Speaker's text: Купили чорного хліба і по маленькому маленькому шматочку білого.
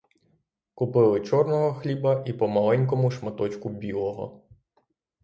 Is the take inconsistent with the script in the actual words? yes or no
yes